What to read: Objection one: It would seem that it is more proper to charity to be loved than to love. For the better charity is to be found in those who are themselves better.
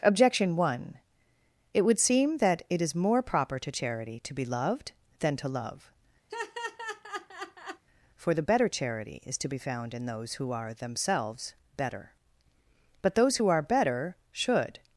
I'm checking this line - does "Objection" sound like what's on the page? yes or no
yes